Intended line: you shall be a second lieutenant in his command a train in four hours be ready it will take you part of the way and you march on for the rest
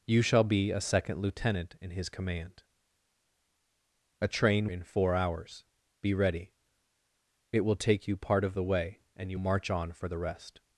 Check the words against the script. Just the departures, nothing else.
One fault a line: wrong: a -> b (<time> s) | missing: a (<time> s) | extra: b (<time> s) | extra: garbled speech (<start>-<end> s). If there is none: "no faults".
no faults